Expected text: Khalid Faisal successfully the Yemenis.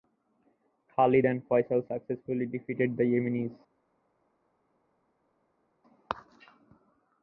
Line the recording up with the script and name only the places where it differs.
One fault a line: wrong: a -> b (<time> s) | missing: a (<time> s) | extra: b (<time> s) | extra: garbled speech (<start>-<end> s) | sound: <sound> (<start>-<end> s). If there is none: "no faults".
extra: and (1.2 s)
extra: defeated (2.4 s)